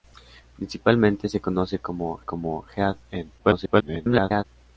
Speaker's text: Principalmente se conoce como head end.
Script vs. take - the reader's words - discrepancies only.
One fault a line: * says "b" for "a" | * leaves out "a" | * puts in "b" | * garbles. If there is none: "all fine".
* puts in "como"
* garbles